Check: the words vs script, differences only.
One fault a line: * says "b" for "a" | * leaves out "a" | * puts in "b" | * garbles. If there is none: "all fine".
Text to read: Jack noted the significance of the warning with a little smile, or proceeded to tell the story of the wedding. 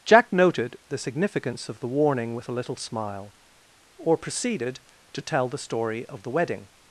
all fine